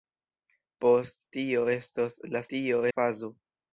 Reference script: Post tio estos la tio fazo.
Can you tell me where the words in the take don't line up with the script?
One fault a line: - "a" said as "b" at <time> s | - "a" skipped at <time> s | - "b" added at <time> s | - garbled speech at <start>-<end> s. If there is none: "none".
none